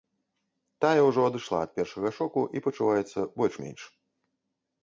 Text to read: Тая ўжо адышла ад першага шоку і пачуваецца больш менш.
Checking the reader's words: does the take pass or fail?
pass